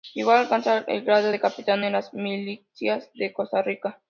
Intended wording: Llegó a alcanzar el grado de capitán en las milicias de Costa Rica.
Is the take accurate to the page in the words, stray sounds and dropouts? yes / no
yes